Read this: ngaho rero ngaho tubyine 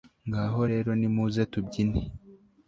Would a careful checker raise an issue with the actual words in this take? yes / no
yes